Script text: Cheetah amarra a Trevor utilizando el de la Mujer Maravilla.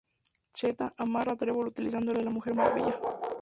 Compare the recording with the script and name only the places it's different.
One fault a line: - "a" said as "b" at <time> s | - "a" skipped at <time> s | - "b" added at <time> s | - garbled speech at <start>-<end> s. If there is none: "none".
none